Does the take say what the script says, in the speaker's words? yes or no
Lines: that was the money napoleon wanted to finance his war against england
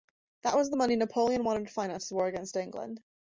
yes